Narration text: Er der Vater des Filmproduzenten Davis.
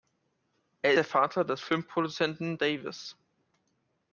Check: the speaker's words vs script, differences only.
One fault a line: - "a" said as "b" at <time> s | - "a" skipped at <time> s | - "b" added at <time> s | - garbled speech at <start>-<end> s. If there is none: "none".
none